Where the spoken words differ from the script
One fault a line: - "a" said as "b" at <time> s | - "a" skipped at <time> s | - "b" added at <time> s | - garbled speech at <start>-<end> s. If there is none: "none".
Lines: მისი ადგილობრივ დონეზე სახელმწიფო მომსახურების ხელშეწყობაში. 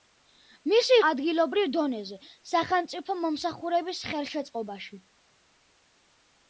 none